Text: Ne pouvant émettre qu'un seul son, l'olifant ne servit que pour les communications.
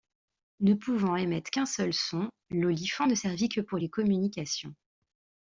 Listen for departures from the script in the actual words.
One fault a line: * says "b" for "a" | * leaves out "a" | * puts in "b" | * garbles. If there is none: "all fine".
all fine